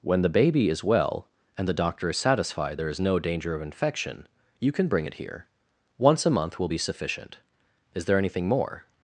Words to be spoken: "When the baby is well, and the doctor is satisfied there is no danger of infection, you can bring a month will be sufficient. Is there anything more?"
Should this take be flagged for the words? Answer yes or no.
yes